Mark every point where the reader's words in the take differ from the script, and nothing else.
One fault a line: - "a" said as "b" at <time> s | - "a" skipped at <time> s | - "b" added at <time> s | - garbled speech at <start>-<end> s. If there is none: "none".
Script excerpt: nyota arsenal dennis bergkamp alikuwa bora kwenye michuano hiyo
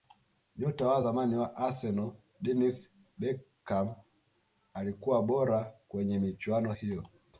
- "wa zamani wa" added at 0.9 s